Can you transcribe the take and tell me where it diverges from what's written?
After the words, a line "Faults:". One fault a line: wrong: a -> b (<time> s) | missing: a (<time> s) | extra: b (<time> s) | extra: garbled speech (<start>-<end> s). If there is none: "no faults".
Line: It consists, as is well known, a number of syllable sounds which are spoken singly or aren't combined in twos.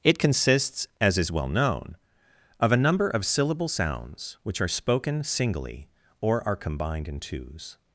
It consists, as is well known, of a number of syllable sounds which are spoken singly or are combined in twos.
Faults:
extra: of (2.6 s)
wrong: aren't -> are (6.5 s)